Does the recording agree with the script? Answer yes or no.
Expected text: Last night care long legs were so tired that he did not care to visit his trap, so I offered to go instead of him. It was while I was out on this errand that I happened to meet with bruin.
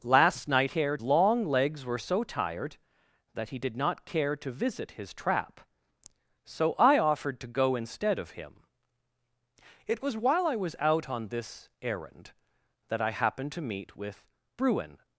yes